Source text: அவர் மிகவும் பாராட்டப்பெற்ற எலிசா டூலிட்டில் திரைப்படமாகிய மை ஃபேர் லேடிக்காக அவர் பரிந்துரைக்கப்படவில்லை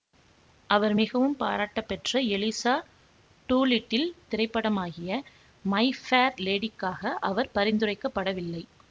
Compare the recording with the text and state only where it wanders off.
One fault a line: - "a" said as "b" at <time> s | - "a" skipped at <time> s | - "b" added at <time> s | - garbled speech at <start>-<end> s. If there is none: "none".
none